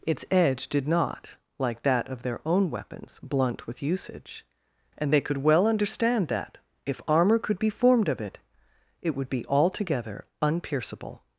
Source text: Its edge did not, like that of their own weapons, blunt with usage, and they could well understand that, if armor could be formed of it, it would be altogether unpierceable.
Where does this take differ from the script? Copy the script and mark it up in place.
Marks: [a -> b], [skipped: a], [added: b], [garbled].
Its edge did not, like that of their own weapons, blunt with usage, and they could well understand that, if armor could be formed of it, it would be altogether unpierceable.